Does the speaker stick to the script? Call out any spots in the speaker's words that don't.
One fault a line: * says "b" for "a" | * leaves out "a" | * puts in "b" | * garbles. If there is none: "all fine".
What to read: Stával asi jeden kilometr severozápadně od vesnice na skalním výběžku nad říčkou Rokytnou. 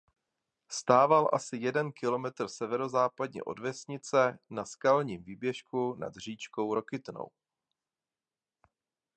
all fine